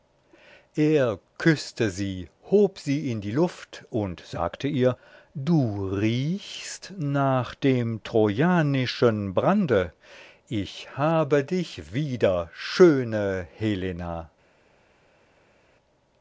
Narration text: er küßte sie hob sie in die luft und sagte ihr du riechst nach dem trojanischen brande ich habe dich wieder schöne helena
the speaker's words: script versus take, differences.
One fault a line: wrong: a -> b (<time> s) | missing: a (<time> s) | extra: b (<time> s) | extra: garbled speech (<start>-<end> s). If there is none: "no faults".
no faults